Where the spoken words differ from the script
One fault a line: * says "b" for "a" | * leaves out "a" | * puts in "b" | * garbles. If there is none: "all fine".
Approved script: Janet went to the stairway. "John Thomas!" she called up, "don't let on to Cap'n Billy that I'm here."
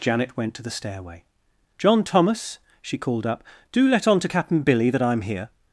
* says "do" for "don't"